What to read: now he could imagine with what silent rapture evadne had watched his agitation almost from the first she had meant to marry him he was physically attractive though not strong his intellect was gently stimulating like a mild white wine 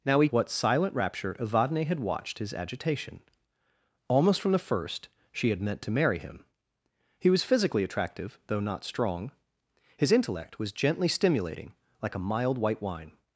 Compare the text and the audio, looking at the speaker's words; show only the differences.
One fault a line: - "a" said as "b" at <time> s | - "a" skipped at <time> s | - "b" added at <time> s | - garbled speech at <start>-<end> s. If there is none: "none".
- "could imagine with" skipped at 0.3 s